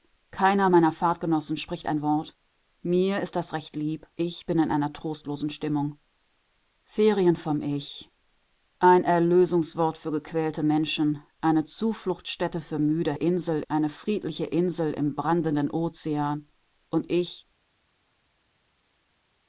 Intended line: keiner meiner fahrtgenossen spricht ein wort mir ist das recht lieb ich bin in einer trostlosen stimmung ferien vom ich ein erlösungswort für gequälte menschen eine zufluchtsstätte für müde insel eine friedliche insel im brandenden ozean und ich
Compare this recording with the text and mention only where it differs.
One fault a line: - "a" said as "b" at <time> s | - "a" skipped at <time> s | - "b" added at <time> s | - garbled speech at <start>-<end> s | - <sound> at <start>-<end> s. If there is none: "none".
none